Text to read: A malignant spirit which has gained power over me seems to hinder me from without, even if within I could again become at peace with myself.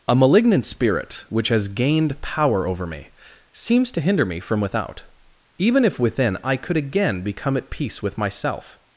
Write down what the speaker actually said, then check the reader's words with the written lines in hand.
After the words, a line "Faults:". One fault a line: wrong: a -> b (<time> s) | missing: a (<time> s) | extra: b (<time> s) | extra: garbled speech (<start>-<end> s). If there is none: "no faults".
A malignant spirit which has gained power over me seems to hinder me from without, even if within I could again become at peace with myself.
Faults:
no faults